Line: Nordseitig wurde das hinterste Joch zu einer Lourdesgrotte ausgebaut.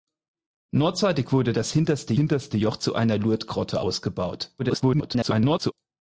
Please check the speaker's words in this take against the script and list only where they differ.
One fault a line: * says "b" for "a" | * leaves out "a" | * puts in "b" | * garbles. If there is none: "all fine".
* puts in "hinterste"
* garbles